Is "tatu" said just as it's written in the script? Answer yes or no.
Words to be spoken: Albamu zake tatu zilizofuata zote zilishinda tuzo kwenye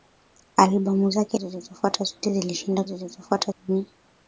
no